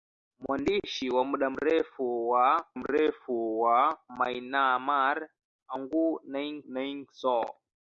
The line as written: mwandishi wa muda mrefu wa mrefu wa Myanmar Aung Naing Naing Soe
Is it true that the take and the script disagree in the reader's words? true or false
false